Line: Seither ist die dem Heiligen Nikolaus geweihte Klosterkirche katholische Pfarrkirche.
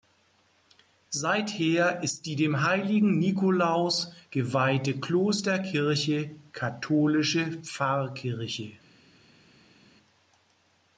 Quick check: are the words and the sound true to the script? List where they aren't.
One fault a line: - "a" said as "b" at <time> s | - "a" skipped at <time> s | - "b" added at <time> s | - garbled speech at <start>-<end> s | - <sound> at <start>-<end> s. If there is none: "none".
none